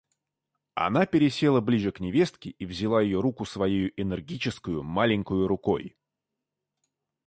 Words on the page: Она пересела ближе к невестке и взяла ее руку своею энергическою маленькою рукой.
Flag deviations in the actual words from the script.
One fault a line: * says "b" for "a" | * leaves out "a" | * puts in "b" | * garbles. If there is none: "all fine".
all fine